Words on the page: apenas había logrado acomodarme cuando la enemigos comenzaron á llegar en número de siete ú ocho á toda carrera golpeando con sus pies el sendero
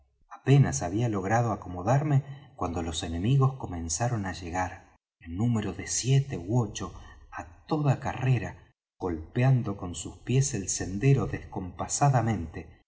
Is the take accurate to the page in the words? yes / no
no